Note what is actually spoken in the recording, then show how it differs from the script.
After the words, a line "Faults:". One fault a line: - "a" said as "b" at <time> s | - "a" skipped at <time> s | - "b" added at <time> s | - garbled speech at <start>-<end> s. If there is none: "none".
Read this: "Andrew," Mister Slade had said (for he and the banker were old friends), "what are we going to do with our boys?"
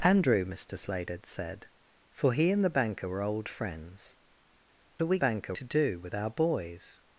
"Andrew," Mister Slade had said (for he and the banker were old friends), "are we banker to do with our boys?"
Faults:
- "what" skipped at 4.2 s
- "going" said as "banker" at 5.2 s